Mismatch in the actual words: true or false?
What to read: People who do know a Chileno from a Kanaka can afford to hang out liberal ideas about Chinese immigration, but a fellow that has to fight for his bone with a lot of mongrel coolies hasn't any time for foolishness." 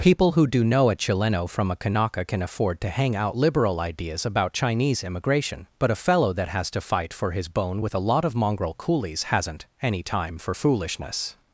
false